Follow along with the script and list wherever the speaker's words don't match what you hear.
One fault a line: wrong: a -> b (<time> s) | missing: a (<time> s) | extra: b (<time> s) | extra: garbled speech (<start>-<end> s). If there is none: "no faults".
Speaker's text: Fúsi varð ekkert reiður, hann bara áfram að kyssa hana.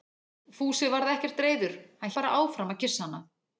no faults